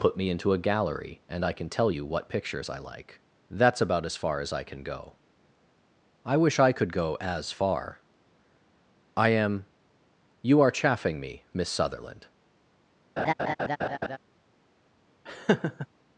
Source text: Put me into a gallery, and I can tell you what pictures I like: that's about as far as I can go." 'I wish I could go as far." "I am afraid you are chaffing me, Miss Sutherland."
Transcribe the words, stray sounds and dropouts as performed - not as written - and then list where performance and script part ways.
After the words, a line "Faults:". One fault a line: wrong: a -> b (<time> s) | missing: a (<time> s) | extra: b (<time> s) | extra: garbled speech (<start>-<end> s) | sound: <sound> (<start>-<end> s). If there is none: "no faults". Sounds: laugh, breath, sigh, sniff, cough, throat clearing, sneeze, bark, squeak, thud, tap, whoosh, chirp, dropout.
Put me into a gallery, and I can tell you what pictures I like: that's about as far as I can go." 'I wish I could go as far." "I am you are chaffing me, Miss Sutherland."
Faults:
missing: afraid (9.7 s)
sound: laugh (13.2-14.2 s)
sound: laugh (15.3-15.9 s)